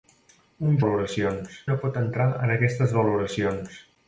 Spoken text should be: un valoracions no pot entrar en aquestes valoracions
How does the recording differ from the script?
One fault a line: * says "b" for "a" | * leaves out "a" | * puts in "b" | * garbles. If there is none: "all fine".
all fine